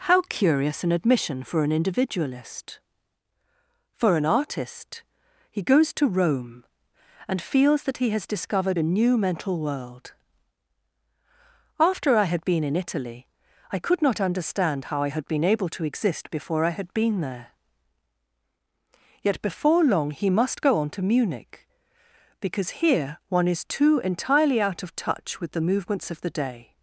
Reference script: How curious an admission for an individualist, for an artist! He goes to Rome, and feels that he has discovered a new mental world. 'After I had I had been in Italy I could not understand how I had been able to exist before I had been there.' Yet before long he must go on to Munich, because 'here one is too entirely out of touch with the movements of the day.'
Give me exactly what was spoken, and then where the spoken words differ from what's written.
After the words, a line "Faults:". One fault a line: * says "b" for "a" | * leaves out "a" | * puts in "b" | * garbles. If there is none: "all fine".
How curious an admission for an individualist, for an artist! He goes to Rome, and feels that he has discovered a new mental world. 'After I had been in Italy I could not understand how I had been able to exist before I had been there.' Yet before long he must go on to Munich, because 'here one is too entirely out of touch with the movements of the day.'
Faults:
* leaves out "I had"